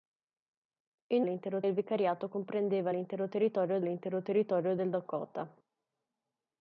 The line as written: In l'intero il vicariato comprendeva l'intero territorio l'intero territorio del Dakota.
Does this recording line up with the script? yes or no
yes